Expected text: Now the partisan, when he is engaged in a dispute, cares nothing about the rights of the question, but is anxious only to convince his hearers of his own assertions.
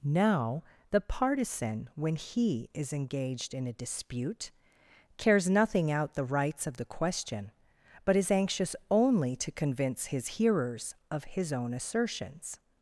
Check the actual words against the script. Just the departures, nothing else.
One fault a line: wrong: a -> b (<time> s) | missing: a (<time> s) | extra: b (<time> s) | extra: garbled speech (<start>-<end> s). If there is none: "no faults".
wrong: about -> out (5.9 s)